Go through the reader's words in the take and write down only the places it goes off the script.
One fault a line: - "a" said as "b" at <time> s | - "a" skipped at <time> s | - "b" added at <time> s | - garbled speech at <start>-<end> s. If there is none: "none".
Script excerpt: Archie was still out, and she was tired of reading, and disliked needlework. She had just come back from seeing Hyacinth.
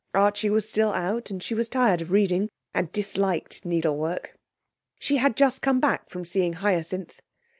none